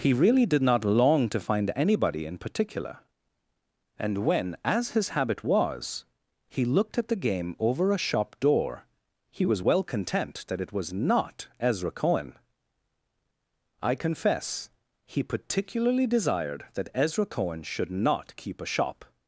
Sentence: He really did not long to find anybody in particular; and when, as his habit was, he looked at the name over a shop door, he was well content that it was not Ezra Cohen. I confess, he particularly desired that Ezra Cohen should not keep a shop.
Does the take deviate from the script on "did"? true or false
false